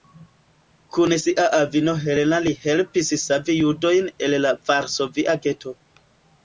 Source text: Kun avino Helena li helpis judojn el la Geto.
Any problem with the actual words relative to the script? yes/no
yes